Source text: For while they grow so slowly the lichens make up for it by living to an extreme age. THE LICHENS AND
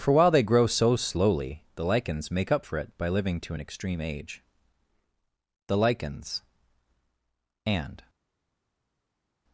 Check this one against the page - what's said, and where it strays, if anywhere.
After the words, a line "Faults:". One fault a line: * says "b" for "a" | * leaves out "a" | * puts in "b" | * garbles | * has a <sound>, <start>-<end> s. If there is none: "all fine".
For while they grow so slowly the lichens make up for it by living to an extreme age. THE LICHENS AND
Faults:
all fine